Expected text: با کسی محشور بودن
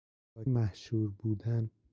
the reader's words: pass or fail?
fail